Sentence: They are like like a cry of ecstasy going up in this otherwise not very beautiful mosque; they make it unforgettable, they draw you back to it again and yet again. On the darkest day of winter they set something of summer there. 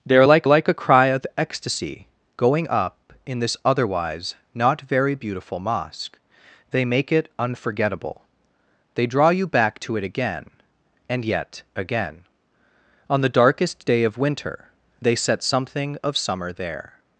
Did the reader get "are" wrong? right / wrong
right